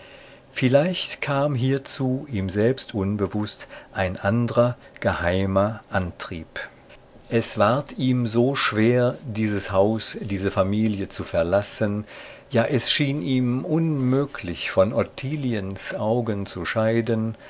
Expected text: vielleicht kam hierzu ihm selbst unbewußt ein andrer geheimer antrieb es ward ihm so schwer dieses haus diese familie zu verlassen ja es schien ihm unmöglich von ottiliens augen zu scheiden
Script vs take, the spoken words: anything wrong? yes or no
no